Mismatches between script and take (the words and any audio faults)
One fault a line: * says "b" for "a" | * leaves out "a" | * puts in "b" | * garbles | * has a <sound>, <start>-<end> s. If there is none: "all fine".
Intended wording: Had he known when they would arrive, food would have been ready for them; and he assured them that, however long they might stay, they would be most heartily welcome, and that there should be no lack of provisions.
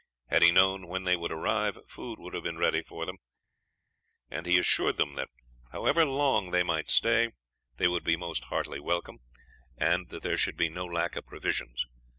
all fine